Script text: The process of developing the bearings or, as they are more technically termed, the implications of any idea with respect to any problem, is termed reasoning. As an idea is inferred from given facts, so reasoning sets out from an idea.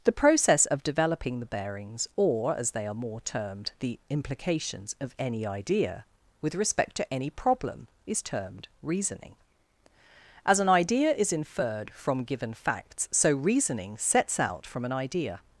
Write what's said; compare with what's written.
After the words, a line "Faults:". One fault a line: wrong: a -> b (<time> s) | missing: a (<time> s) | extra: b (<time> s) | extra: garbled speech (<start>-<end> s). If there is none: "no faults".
The process of developing the bearings or, as they are more termed, the implications of any idea with respect to any problem, is termed reasoning. As an idea is inferred from given facts, so reasoning sets out from an idea.
Faults:
missing: technically (3.2 s)